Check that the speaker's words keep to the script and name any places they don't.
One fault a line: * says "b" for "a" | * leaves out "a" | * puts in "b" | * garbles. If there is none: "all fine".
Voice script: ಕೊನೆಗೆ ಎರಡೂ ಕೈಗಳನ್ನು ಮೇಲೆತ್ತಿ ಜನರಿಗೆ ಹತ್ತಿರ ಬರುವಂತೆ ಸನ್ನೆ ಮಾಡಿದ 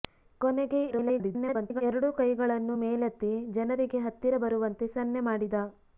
* garbles